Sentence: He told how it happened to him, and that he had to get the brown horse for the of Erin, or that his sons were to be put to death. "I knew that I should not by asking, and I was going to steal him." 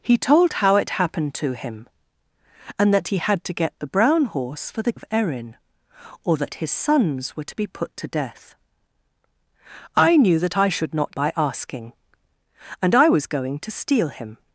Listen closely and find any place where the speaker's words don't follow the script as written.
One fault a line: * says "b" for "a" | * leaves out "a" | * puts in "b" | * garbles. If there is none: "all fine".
all fine